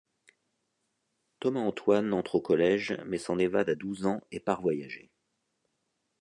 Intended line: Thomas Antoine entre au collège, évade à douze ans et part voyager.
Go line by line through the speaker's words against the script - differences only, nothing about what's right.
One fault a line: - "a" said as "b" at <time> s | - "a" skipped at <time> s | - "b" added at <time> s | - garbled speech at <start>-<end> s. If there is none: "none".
- "mais s'en" added at 3.0 s